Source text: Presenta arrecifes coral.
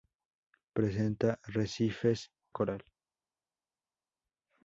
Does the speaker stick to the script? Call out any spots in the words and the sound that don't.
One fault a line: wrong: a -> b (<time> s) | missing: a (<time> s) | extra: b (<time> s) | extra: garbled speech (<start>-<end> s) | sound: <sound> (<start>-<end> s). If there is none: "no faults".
no faults